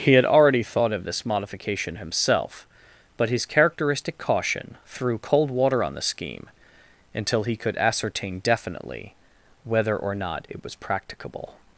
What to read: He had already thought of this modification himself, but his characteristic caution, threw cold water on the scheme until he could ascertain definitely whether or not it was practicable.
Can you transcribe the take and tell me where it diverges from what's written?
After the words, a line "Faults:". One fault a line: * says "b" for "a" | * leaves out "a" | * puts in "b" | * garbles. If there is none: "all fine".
He had already thought of this modification himself, but his characteristic caution, threw cold water on the scheme until he could ascertain definitely whether or not it was practicable.
Faults:
all fine